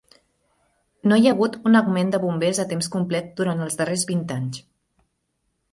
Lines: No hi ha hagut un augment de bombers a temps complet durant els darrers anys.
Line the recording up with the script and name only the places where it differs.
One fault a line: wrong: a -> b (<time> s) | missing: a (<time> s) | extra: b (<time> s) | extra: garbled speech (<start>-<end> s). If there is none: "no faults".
extra: vint (4.1 s)